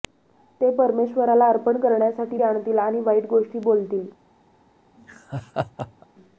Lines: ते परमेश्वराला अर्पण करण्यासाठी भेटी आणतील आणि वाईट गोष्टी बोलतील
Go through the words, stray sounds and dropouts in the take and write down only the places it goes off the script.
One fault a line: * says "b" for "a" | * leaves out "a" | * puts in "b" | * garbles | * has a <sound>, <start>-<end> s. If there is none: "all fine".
* leaves out "भेटी"
* has a laugh, 5.0-6.1 s